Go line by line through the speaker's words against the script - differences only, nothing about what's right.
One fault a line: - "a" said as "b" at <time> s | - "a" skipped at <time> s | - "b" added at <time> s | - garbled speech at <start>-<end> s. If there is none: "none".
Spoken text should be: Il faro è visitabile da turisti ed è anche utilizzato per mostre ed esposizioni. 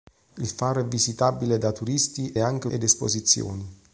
- "ed" skipped at 2.4 s
- "utilizzato per mostre" skipped at 2.7 s